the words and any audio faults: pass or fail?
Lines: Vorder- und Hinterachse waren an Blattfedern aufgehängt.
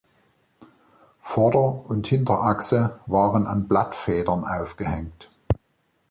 pass